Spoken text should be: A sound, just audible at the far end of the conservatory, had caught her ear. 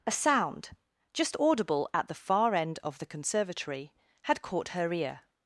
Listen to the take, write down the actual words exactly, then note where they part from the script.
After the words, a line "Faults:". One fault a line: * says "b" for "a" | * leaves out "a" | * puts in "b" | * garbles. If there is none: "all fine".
A sound, just audible at the far end of the conservatory, had caught her ear.
Faults:
all fine